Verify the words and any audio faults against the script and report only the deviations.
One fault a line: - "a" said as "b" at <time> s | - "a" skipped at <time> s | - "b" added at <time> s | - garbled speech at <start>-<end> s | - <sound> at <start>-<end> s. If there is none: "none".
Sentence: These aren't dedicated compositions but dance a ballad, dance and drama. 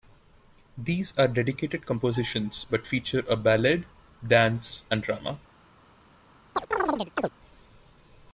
- "aren't" said as "are" at 1.1 s
- "dance" said as "feature" at 2.9 s
- chirp at 6.6-7.3 s